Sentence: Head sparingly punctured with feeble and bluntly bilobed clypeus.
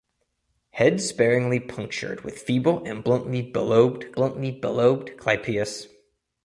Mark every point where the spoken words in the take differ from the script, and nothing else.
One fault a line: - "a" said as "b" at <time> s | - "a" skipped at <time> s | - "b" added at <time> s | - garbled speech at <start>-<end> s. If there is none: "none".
- "bluntly bilobed" added at 4.1 s